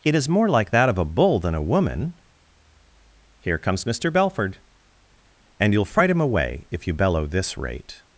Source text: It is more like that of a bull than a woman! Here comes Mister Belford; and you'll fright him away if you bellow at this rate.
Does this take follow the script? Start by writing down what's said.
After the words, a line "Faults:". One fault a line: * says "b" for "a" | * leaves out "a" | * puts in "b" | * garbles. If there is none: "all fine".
It is more like that of a bull than a woman! Here comes Mister Belford; and you'll fright him away if you bellow this rate.
Faults:
* leaves out "at"